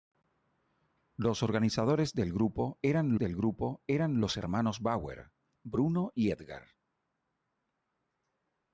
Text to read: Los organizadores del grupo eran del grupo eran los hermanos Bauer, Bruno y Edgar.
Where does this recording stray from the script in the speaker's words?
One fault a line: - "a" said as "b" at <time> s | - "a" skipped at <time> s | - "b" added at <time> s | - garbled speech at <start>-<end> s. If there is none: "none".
none